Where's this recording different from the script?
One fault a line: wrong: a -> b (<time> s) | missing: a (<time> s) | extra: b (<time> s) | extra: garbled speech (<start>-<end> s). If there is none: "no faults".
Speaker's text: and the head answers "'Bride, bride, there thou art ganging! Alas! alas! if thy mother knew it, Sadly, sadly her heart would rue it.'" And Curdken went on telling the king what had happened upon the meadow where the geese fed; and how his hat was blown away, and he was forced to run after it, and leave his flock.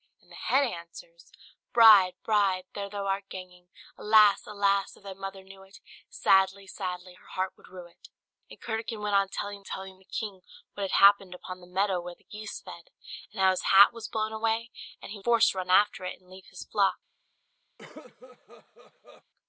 extra: telling (9.6 s)
missing: was (15.2 s)